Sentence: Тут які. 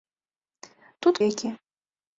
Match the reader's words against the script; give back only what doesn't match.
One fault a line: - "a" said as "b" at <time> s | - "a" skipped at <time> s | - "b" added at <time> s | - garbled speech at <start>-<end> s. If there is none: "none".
none